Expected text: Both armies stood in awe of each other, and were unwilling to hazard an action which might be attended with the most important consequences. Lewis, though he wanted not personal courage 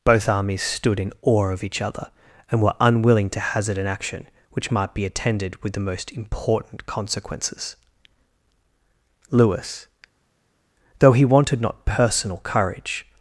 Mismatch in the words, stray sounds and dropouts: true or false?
false